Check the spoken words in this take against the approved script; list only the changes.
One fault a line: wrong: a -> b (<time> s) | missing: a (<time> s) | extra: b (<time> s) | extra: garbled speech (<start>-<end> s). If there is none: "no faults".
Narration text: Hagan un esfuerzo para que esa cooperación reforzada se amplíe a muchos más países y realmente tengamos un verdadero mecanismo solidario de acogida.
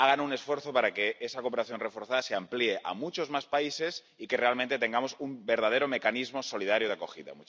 no faults